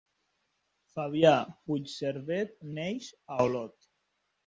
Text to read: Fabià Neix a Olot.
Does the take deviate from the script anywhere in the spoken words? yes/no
yes